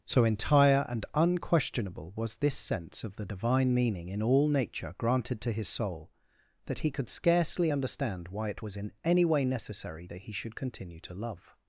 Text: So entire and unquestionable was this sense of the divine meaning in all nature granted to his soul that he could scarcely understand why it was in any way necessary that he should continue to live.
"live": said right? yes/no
no